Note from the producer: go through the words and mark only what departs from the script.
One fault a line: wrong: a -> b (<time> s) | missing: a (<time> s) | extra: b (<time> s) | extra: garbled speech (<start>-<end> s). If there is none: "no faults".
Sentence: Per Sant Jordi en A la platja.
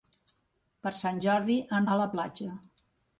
no faults